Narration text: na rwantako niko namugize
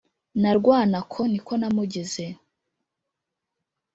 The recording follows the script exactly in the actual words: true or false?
true